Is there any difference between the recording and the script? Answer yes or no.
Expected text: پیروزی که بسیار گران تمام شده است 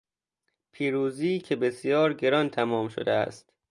no